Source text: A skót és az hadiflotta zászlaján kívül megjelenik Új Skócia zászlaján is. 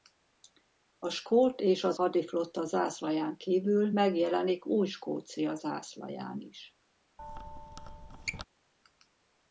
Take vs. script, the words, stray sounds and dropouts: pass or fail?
fail